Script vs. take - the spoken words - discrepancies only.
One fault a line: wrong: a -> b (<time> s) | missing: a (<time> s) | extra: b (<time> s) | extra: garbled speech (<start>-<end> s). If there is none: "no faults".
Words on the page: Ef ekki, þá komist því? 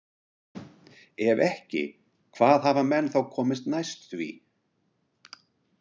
extra: hvað hafa menn (2.4 s)
extra: næst (3.8 s)